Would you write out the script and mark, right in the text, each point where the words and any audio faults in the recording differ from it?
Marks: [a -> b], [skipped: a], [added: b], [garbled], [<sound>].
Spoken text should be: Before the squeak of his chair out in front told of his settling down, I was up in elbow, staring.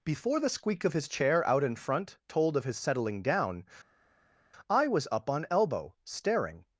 Before the squeak of his chair out in front told of his settling down, I was up [in -> on] elbow, staring.